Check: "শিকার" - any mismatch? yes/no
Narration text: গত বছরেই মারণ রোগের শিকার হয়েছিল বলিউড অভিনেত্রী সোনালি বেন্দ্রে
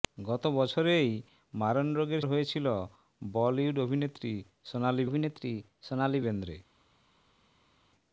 yes